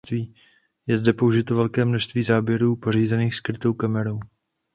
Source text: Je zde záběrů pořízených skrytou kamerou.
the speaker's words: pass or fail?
fail